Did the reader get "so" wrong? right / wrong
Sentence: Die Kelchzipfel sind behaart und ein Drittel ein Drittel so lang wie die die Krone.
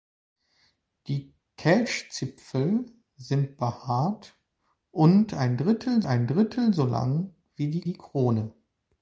right